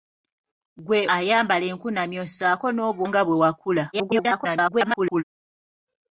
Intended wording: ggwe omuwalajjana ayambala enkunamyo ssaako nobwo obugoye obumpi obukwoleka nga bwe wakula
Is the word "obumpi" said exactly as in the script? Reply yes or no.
no